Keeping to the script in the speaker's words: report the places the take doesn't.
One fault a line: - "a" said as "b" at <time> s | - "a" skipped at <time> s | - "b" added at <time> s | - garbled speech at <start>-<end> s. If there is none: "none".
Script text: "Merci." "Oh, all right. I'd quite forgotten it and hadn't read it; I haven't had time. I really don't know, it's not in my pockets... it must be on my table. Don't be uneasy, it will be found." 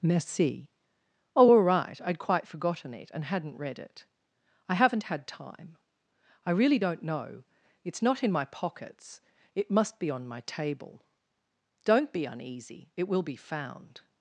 none